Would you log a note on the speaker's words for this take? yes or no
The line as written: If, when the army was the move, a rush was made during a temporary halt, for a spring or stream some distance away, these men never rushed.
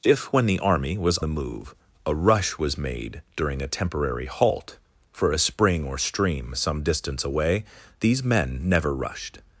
no